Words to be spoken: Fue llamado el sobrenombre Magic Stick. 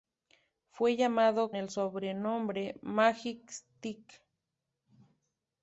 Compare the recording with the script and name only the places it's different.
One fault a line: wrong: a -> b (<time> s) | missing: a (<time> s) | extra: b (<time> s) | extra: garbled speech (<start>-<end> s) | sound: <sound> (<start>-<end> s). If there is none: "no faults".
no faults